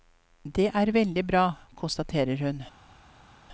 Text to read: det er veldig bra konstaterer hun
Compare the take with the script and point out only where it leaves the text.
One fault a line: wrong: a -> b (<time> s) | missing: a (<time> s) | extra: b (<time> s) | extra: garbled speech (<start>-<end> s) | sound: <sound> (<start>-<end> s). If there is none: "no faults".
no faults